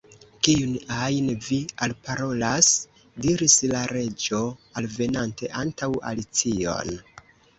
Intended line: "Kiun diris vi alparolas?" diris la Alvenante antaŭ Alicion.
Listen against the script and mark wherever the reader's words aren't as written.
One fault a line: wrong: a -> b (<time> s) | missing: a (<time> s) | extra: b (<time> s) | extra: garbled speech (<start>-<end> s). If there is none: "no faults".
wrong: diris -> ajn (1.1 s)
extra: Reĝo (3.9 s)